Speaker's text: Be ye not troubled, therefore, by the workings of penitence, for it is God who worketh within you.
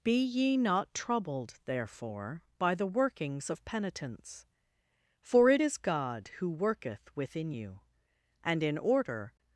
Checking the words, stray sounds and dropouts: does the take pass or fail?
fail